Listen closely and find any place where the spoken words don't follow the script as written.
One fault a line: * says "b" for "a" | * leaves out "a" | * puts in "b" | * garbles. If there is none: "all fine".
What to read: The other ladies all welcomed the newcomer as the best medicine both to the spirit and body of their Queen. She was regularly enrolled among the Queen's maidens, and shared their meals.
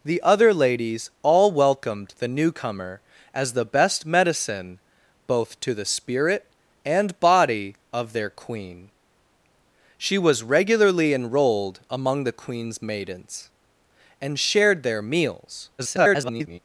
* garbles